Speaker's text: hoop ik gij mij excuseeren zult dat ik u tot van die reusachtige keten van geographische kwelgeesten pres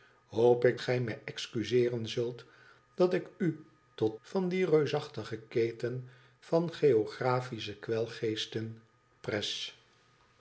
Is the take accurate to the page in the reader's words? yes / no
yes